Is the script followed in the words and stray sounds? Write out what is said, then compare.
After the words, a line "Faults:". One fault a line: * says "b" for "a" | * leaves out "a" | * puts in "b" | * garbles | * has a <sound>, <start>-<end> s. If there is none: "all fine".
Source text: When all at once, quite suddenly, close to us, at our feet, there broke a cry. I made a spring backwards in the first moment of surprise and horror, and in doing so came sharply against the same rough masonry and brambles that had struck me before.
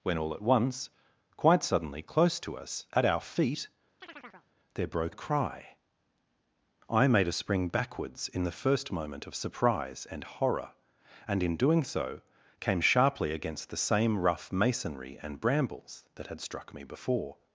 When all at once, quite suddenly, close to us, at our feet, there broke a cry. I made a spring backwards in the first moment of surprise and horror, and in doing so came sharply against the same rough masonry and brambles that had struck me before.
Faults:
* has a chirp, 4.0-4.5 s